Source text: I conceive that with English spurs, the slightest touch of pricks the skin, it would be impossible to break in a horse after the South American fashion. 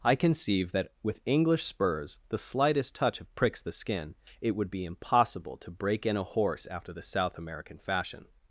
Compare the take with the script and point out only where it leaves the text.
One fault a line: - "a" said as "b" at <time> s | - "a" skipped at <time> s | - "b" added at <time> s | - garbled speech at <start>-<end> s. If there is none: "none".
none